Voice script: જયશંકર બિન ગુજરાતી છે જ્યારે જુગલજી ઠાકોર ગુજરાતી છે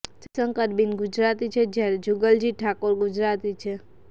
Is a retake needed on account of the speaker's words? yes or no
no